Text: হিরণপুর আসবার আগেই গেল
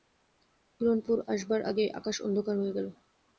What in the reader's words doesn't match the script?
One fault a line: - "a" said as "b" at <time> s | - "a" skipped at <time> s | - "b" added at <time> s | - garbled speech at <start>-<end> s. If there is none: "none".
- "আকাশ অন্ধকার হয়ে" added at 1.9 s